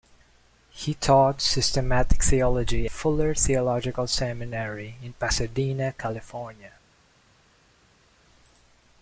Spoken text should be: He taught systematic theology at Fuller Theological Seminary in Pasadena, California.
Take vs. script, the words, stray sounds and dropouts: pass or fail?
fail